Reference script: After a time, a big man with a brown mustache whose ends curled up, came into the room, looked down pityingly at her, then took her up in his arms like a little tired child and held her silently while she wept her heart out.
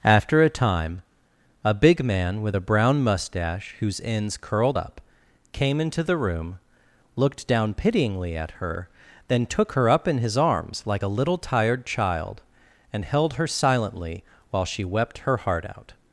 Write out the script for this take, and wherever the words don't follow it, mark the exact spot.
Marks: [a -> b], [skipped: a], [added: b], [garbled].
After a time, a big man with a brown mustache whose ends curled up, came into the room, looked down pityingly at her, then took her up in his arms like a little tired child and held her silently while she wept her heart out.